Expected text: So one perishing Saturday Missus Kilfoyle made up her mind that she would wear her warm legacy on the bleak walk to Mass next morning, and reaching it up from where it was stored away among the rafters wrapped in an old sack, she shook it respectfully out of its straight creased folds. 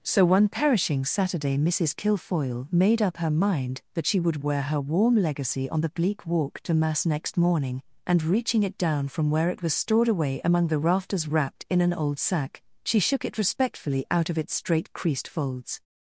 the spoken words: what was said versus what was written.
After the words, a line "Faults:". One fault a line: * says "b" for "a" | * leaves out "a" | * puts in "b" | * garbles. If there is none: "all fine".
So one perishing Saturday Missus Kilfoyle made up her mind that she would wear her warm legacy on the bleak walk to Mass next morning, and reaching it down from where it was stored away among the rafters wrapped in an old sack, she shook it respectfully out of its straight creased folds.
Faults:
* says "down" for "up"